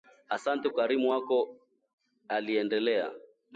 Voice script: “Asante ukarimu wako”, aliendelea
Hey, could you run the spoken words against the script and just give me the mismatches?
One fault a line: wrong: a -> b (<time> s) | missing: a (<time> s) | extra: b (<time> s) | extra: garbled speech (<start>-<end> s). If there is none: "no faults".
no faults